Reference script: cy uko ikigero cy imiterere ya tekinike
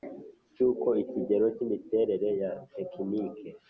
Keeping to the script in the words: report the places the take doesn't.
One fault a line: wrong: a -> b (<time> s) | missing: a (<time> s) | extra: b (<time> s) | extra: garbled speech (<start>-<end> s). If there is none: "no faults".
no faults